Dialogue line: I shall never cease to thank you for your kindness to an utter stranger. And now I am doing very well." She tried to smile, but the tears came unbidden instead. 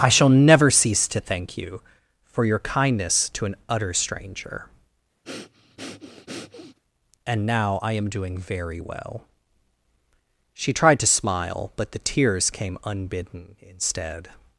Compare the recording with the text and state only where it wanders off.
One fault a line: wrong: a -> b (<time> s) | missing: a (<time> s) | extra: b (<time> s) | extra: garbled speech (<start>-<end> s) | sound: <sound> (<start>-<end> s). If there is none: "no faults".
sound: breath (5.2-6.8 s)